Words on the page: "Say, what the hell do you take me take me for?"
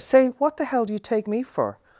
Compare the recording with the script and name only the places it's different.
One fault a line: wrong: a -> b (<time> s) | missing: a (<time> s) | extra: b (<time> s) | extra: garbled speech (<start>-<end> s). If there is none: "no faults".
missing: take me (1.4 s)